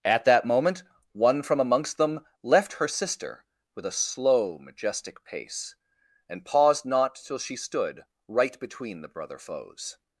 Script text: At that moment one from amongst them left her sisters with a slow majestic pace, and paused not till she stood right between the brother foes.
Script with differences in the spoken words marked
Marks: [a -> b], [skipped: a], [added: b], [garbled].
At that moment one from amongst them left her [sisters -> sister] with a slow majestic pace, and paused not till she stood right between the brother foes.